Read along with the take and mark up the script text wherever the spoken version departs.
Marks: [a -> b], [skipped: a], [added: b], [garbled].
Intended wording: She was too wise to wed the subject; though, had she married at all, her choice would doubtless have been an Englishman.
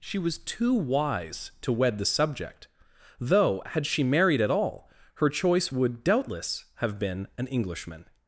She was too wise to wed the subject; though, had she married at all, her choice would doubtless have been an Englishman.